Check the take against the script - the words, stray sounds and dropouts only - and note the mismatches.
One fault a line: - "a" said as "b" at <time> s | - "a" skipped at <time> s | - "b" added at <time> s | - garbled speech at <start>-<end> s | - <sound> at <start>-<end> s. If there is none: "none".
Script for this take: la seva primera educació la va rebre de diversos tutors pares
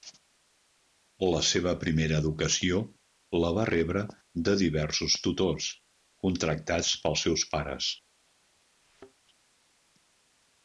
- "contractats pels seus" added at 6.3 s
- thud at 8.8-9.2 s